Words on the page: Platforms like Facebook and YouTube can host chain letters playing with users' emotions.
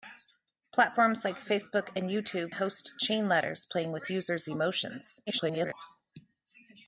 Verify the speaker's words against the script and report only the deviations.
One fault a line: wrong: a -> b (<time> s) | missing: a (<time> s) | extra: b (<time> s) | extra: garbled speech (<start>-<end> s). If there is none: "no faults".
missing: can (2.5 s)
extra: garbled speech (5.3-5.7 s)